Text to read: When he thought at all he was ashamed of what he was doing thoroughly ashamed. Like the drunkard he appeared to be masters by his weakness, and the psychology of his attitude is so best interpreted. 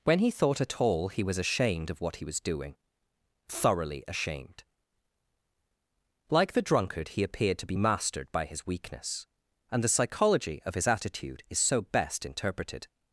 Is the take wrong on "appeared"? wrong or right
right